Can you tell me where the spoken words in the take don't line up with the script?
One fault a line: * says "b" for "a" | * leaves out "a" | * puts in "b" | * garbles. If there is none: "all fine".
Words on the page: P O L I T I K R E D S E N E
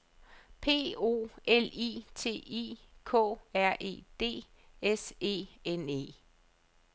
all fine